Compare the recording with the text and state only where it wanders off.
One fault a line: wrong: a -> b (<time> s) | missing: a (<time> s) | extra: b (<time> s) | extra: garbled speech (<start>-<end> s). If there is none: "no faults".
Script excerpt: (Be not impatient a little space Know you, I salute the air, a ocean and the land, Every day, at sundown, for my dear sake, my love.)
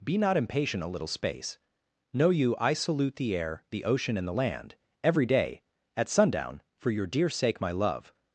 wrong: a -> the (3.7 s)
wrong: my -> your (6.9 s)